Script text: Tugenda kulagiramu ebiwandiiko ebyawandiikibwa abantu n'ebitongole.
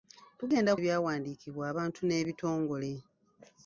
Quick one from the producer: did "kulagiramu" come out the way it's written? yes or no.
no